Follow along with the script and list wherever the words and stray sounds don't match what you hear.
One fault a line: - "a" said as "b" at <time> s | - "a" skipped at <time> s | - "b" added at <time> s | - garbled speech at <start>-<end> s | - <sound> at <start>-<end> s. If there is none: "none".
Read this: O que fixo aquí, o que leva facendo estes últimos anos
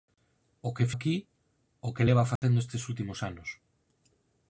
- "fixo" skipped at 0.9 s
- dropout at 2.4-2.4 s